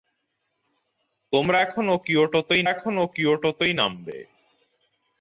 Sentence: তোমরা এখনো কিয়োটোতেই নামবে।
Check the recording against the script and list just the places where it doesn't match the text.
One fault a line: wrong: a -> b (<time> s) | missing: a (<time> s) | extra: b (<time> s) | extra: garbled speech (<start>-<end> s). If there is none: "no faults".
extra: এখনো কিয়োটোতেই (2.7 s)